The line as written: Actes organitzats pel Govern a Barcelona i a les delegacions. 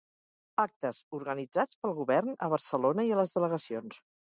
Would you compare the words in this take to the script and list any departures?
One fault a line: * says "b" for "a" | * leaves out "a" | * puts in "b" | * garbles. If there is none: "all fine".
all fine